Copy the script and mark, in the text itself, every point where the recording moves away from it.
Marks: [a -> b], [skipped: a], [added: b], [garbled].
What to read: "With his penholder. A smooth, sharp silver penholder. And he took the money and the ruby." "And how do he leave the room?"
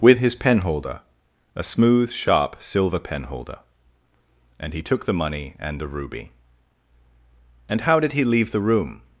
"With his penholder. A smooth, sharp silver penholder. And he took the money and the ruby." "And how [do -> did] he leave the room?"